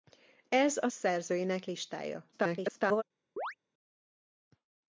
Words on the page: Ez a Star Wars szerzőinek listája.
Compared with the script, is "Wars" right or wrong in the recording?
wrong